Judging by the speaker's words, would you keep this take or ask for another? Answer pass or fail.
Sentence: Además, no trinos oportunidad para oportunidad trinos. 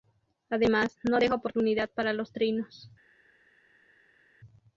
fail